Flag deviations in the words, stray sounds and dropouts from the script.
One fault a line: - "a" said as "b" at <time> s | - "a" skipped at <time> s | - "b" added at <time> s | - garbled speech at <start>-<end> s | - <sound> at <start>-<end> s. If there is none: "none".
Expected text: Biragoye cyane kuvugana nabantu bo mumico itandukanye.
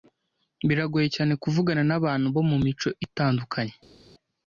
none